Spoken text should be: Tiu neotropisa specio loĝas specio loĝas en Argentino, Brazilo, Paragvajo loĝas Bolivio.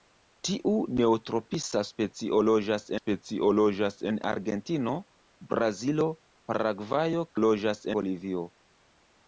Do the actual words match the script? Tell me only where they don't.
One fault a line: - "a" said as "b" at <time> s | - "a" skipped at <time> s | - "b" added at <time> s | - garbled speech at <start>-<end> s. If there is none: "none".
none